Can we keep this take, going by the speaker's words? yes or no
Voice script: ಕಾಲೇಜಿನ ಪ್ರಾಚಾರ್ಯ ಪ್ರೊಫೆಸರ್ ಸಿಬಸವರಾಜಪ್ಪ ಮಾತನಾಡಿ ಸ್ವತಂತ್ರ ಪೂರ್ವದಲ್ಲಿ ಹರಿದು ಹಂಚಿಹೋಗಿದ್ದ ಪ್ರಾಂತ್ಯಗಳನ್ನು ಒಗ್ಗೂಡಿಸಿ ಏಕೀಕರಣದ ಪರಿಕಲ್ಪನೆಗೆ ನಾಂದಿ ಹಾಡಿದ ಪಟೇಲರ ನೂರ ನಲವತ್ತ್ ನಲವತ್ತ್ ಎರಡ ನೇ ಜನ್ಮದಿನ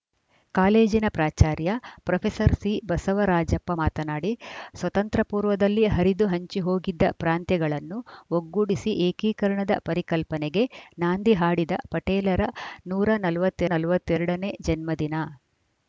yes